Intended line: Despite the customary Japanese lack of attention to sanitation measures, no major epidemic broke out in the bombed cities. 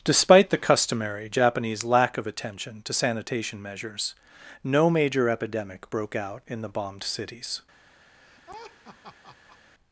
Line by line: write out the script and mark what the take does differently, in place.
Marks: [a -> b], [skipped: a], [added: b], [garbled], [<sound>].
Despite the customary Japanese lack of attention to sanitation measures, no major epidemic broke out in the bombed cities. [laugh]